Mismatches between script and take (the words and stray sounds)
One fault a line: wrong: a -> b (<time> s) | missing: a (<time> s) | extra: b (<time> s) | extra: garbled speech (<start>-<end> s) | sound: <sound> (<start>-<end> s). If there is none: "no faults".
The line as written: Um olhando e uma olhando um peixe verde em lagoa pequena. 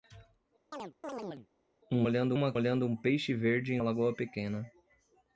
sound: chirp (0.7-1.5 s)